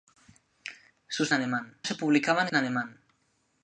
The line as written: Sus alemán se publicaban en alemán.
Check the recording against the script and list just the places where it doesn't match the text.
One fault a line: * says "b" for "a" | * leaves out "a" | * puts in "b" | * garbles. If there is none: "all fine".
all fine